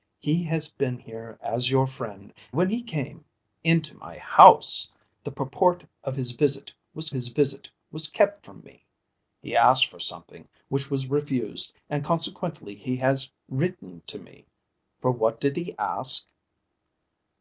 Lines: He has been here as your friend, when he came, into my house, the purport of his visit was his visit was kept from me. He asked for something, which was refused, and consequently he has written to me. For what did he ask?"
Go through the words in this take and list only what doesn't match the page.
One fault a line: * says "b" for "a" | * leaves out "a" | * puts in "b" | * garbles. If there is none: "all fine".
all fine